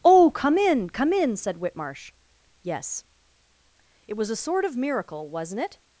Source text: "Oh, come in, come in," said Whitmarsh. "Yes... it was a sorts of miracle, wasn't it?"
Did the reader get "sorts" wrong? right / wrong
wrong